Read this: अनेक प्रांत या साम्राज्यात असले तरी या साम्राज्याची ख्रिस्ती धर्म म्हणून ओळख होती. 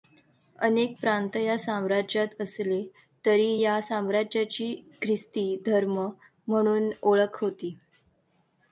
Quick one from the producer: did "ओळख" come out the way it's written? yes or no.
yes